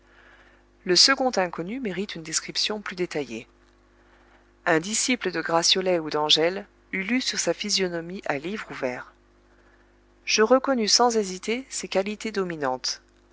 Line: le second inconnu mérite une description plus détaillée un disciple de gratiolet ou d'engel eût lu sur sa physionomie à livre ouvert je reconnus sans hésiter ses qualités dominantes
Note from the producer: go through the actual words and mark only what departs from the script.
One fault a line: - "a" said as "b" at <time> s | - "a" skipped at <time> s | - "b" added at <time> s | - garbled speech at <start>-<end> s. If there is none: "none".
none